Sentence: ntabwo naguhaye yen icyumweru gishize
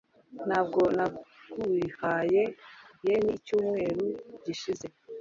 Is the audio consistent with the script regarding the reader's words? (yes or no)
yes